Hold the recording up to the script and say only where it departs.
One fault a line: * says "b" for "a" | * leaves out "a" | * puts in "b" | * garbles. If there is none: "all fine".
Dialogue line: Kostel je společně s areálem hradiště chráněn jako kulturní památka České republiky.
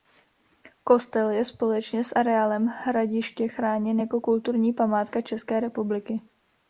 all fine